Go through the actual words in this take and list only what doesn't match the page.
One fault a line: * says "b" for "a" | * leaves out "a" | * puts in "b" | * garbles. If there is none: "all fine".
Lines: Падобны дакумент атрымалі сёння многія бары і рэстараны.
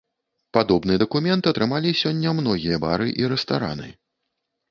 all fine